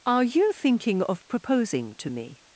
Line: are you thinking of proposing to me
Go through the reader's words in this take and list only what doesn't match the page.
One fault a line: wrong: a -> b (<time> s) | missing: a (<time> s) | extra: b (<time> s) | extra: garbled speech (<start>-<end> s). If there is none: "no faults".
no faults